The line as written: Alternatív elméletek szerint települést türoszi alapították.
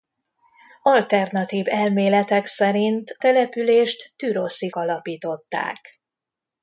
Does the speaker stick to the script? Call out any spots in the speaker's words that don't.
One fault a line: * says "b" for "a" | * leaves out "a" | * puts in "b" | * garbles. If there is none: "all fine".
all fine